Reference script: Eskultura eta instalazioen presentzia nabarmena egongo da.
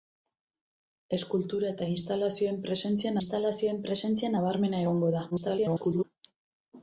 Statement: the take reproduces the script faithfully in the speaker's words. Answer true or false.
false